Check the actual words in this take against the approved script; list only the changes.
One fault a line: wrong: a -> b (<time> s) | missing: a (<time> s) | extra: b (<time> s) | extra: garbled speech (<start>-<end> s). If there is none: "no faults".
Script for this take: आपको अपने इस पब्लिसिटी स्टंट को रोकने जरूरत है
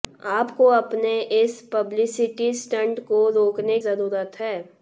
no faults